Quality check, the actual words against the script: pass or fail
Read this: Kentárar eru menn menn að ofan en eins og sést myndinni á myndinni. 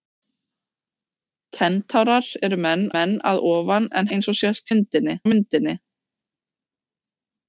pass